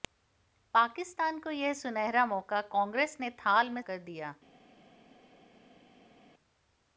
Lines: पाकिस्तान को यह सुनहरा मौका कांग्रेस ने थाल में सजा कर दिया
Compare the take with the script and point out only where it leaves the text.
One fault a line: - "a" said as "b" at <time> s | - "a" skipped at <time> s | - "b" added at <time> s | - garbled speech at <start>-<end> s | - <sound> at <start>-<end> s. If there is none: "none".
- "सजा" skipped at 3.8 s